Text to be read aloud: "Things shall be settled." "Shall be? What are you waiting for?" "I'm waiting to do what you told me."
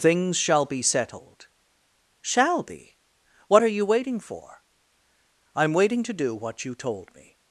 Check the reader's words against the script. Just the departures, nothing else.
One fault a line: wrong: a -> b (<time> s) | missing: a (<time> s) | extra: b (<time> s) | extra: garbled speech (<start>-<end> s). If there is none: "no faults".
no faults